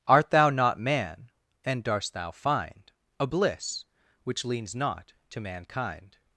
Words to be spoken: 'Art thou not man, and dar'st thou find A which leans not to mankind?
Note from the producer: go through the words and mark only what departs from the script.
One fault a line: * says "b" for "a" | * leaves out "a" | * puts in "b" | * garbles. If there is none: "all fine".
* puts in "bliss"